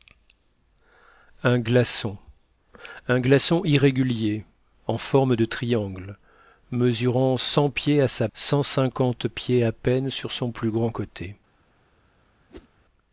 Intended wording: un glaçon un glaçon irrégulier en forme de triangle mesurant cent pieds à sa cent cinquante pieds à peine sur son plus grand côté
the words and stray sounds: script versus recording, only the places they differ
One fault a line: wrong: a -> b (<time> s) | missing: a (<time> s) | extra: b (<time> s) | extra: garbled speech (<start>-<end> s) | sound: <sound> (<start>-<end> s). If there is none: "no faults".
sound: whoosh (12.5-12.7 s)